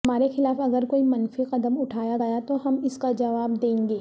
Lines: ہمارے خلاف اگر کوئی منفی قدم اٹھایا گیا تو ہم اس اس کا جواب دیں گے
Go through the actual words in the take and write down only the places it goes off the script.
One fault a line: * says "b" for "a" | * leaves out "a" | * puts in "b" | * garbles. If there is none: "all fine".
* leaves out "اس"